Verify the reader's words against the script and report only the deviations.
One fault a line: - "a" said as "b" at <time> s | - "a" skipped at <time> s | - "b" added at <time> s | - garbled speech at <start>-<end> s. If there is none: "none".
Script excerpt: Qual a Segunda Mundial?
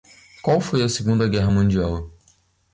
- "foi" added at 0.6 s
- "Guerra" added at 1.3 s